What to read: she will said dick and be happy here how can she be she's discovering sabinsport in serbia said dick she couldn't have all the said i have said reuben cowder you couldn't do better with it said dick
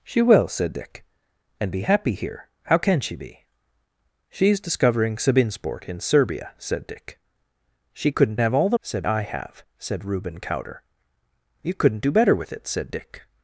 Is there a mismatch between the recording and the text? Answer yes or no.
no